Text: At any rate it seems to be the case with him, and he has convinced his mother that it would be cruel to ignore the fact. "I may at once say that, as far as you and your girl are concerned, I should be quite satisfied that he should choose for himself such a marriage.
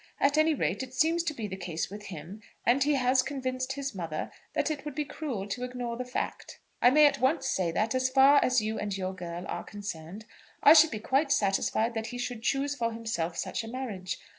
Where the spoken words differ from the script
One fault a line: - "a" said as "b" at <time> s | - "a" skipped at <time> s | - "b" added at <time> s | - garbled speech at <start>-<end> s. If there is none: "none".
none